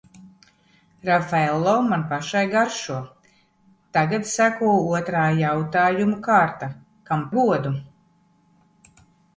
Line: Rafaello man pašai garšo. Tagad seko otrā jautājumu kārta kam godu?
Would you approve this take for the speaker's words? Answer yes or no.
yes